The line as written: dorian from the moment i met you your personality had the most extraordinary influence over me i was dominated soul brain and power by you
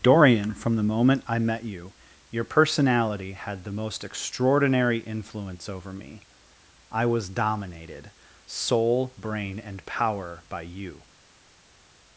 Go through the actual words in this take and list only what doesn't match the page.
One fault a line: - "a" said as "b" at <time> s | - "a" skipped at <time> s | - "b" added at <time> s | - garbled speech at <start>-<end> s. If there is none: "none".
none